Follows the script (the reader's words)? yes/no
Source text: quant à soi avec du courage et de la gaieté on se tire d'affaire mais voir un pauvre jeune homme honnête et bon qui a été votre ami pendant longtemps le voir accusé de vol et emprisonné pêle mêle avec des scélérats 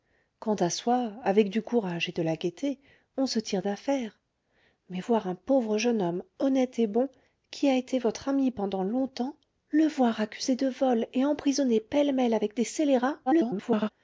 no